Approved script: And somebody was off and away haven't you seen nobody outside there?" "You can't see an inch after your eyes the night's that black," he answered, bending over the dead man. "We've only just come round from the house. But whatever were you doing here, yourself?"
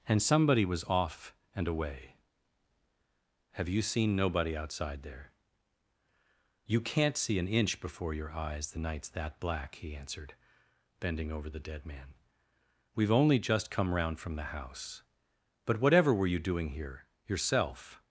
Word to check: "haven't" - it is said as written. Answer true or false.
false